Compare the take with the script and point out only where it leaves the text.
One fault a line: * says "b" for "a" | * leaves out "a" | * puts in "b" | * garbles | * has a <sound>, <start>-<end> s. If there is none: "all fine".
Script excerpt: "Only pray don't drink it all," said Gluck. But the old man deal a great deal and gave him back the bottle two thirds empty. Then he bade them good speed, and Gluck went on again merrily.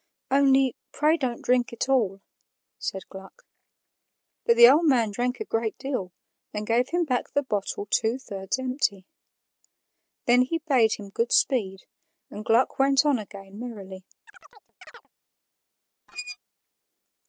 * says "drank" for "deal"
* says "him" for "them"
* has a chirp, 14.3-15.1 s
* has a squeak, 16.1-16.4 s